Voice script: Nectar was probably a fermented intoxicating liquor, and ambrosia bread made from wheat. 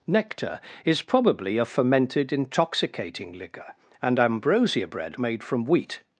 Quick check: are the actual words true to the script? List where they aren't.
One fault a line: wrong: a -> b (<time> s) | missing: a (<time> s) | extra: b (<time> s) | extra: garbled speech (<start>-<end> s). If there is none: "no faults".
wrong: was -> is (0.8 s)